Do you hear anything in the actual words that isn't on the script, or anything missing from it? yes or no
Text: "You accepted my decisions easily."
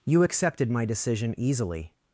yes